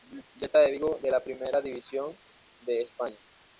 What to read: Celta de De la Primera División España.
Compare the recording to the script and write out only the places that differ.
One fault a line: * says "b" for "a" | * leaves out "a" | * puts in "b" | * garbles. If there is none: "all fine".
* puts in "Vigo"
* puts in "de"